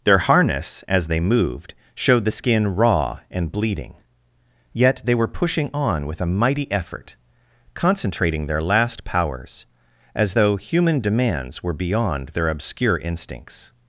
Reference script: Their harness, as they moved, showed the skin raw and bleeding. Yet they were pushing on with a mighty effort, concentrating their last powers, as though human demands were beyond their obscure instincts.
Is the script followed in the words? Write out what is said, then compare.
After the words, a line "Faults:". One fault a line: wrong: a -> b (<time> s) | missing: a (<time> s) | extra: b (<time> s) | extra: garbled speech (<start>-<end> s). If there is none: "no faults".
Their harness, as they moved, showed the skin raw and bleeding. Yet they were pushing on with a mighty effort, concentrating their last powers, as though human demands were beyond their obscure instincts.
Faults:
no faults